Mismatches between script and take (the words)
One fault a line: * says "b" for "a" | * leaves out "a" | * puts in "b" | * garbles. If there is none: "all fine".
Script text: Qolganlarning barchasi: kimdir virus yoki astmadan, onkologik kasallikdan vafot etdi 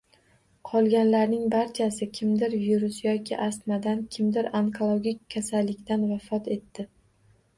* puts in "kimdir"